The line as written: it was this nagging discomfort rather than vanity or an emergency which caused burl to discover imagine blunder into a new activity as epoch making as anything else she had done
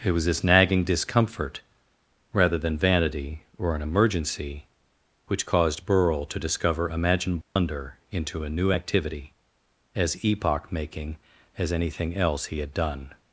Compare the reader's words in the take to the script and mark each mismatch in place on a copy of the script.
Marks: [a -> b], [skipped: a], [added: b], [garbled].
it was this nagging discomfort rather than vanity or an emergency which caused burl to discover imagine blunder into a new activity as epoch making as anything else [she -> he] had done